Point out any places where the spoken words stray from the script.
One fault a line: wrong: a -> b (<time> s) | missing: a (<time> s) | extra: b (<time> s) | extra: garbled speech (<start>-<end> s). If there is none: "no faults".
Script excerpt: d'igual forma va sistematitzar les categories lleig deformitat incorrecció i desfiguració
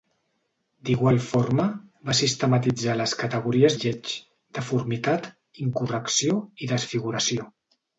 no faults